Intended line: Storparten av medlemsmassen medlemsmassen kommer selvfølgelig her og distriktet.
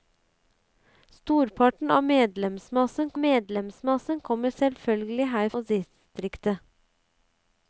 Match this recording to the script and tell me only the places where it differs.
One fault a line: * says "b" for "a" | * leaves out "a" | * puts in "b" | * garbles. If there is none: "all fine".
all fine